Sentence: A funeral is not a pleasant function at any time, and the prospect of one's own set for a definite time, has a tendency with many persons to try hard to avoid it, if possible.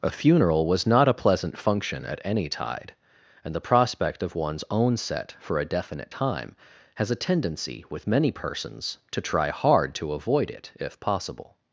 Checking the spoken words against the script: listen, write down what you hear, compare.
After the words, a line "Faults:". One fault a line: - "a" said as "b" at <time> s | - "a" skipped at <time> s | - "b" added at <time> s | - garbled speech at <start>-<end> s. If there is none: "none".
A funeral was not a pleasant function at any tide, and the prospect of one's own set for a definite time, has a tendency with many persons to try hard to avoid it, if possible.
Faults:
- "is" said as "was" at 0.7 s
- "time" said as "tide" at 2.5 s